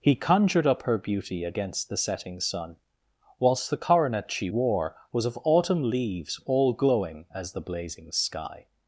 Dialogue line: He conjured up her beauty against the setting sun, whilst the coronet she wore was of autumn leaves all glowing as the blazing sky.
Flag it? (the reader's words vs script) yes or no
no